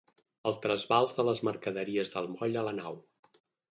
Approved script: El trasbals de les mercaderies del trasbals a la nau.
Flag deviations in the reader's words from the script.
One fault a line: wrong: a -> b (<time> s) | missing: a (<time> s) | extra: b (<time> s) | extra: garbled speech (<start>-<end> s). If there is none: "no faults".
wrong: trasbals -> moll (2.3 s)